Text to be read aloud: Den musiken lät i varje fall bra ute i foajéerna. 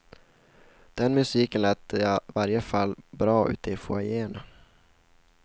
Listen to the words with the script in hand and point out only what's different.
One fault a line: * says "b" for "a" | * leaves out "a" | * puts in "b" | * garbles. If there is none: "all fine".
all fine